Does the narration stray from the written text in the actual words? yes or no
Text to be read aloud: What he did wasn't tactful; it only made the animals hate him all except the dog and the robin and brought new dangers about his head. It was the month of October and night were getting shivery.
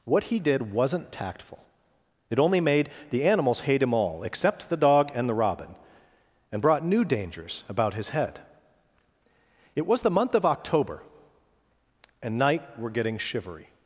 no